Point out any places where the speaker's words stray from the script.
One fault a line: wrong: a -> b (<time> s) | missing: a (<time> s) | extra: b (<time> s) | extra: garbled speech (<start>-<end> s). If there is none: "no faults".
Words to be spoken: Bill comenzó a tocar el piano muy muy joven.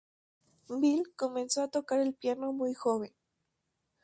missing: muy (2.7 s)